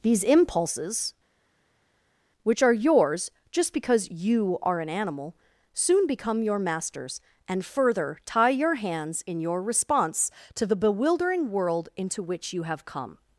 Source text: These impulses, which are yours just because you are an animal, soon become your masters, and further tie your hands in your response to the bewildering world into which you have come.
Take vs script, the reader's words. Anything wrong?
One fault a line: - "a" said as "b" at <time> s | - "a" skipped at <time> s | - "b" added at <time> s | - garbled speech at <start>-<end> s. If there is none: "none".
none